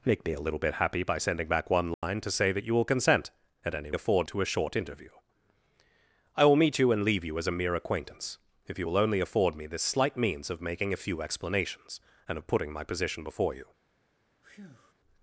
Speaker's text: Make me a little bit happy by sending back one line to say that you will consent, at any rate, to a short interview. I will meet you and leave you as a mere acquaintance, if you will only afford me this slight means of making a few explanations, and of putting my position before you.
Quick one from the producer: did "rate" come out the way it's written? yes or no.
no